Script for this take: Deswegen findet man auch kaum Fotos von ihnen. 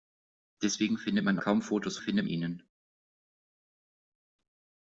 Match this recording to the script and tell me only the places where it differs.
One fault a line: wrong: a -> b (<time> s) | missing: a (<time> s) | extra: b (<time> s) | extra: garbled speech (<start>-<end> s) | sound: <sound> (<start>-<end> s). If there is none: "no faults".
missing: auch (1.4 s)
wrong: von -> findet (2.0 s)